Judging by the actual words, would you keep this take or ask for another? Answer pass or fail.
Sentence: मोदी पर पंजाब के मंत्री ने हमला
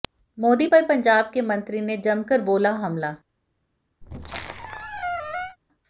fail